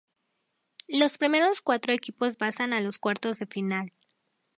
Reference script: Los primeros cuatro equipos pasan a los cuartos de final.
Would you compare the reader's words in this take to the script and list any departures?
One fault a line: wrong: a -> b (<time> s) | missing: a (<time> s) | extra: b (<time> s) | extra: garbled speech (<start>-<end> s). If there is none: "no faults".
no faults